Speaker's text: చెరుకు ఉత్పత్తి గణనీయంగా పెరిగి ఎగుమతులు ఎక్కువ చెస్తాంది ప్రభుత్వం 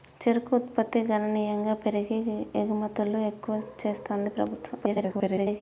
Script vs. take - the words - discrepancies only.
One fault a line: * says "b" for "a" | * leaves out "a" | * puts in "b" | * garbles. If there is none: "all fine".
* garbles